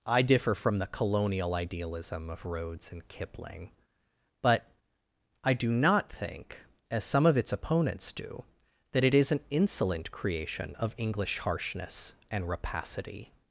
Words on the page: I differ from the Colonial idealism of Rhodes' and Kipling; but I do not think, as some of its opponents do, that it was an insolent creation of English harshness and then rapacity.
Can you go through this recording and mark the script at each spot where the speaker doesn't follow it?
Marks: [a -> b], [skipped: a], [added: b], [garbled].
I differ from the Colonial idealism of Rhodes' and Kipling; but I do not think, as some of its opponents do, that it [was -> is] an insolent creation of English harshness and [skipped: then] rapacity.